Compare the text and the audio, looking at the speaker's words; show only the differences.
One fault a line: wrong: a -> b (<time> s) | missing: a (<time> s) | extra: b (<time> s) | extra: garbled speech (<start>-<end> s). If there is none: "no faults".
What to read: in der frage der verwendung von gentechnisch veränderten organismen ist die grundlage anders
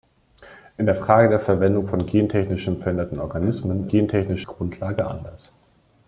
wrong: ist -> gentechnisch (3.9 s)